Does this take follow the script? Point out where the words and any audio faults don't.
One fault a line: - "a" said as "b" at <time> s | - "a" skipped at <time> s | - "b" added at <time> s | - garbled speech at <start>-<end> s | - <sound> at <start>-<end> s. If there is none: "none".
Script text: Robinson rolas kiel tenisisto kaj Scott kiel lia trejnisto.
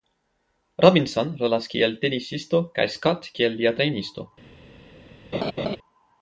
- laugh at 5.3-5.8 s